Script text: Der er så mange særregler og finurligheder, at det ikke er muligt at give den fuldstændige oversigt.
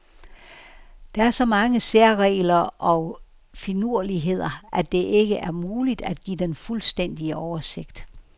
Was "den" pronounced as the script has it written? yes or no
yes